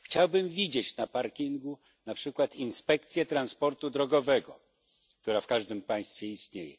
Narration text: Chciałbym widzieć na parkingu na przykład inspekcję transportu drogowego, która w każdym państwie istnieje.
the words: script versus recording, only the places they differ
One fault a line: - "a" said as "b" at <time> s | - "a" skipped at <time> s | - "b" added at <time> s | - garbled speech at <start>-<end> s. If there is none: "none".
none